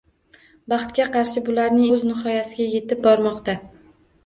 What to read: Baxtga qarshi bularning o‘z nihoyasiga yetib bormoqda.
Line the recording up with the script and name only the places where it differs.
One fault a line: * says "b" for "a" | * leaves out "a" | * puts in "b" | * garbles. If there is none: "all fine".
all fine